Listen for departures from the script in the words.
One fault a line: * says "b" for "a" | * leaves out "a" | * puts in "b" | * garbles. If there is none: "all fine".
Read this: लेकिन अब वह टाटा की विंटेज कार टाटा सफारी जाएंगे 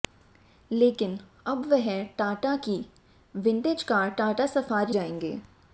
all fine